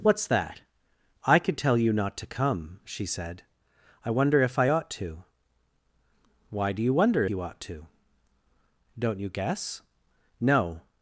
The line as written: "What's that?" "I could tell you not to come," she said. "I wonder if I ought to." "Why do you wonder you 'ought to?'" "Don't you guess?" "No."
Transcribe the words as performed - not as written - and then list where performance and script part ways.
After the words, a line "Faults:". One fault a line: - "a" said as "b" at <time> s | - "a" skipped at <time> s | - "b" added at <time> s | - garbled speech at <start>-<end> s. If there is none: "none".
"What's that?" "I could tell you not to come," she said. "I wonder if I ought to." "Why do you wonder you 'ought to?'" "Don't you guess?" "No."
Faults:
none